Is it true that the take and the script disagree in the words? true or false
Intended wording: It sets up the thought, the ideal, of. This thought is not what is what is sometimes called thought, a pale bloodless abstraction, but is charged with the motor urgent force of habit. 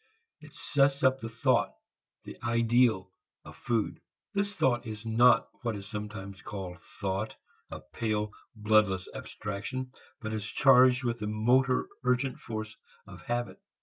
true